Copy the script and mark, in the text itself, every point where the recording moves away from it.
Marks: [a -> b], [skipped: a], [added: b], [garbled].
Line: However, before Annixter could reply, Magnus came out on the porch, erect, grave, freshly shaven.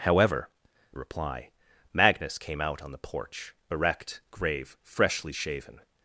However, [skipped: before Annixter could] reply, Magnus came out on the porch, erect, grave, freshly shaven.